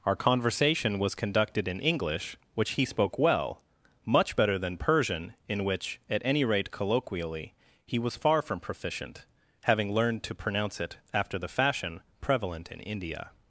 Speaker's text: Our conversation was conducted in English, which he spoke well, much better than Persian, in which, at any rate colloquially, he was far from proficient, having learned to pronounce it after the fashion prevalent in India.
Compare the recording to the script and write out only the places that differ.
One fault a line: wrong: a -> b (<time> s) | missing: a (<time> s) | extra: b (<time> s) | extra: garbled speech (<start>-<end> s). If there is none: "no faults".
no faults